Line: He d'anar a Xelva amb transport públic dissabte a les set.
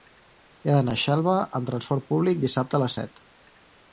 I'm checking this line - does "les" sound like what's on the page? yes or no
yes